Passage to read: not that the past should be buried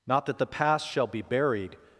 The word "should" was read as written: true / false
false